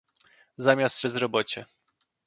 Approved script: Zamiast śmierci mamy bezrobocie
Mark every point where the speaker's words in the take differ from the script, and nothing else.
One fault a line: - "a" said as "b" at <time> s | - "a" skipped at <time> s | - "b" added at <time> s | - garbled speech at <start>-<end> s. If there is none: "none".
- "śmierci mamy" skipped at 1.0 s